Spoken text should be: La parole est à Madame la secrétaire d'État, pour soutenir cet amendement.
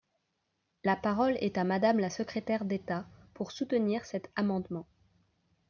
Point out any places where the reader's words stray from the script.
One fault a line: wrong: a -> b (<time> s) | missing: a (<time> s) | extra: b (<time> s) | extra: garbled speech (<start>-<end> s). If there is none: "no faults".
no faults